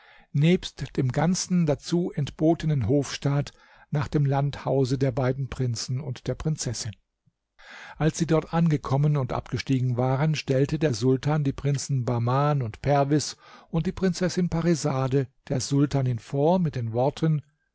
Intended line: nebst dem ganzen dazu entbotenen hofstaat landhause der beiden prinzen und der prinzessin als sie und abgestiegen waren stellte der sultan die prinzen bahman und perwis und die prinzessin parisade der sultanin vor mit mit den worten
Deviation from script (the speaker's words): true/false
true